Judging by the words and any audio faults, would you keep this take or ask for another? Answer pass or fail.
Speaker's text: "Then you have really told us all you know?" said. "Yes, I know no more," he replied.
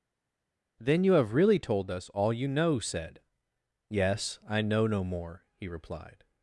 pass